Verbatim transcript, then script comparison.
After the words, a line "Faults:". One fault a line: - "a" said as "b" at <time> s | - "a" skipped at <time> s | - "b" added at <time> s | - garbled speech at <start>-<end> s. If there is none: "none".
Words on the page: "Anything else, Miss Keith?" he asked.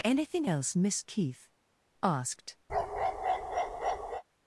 "Anything else, Miss Keith?" asked.
Faults:
- "he" skipped at 1.5 s